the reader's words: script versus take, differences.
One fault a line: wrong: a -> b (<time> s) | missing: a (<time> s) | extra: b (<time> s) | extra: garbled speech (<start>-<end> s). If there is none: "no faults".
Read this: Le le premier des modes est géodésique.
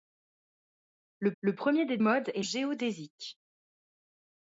no faults